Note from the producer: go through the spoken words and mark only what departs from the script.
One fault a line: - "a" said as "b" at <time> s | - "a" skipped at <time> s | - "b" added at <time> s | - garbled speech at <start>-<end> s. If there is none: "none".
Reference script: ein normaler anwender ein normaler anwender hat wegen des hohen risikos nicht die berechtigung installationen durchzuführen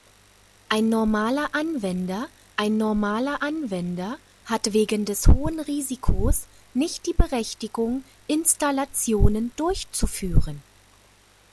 none